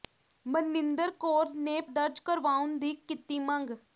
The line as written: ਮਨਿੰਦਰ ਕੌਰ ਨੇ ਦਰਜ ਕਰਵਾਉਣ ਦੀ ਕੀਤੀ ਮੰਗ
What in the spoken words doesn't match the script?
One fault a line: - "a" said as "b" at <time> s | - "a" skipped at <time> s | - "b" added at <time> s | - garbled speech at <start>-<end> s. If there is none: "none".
none